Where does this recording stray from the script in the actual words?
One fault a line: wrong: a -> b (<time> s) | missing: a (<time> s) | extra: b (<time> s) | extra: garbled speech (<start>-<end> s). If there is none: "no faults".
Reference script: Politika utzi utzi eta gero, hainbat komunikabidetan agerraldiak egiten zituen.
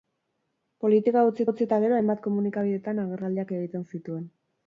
no faults